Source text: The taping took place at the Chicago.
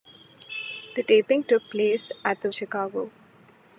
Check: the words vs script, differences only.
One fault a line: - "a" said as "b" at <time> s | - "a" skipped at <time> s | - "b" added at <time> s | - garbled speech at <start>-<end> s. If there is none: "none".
none